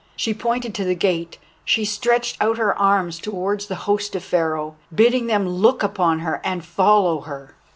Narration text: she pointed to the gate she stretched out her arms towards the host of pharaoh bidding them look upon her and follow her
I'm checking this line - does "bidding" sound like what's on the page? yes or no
yes